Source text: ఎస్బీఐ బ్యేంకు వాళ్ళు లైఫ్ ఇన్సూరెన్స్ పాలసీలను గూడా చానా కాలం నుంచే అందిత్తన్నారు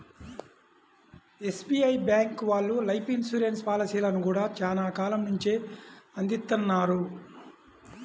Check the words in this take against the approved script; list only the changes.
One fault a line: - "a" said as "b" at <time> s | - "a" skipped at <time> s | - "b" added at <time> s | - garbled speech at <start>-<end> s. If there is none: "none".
none